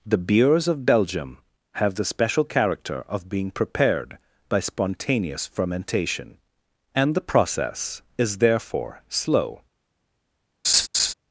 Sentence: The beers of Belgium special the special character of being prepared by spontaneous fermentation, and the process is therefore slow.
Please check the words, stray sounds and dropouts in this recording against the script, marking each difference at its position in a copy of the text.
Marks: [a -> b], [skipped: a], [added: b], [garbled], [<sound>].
The beers of Belgium [special -> have] the special character of being prepared by spontaneous fermentation, and the process is therefore slow. [laugh]